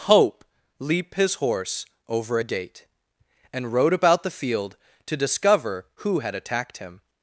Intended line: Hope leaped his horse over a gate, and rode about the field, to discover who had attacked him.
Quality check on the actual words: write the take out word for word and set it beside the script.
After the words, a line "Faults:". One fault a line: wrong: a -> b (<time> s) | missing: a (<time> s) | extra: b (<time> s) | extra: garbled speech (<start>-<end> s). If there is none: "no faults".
Hope leap his horse over a gate, and rode about the field, to discover who had attacked him.
Faults:
wrong: leaped -> leap (0.8 s)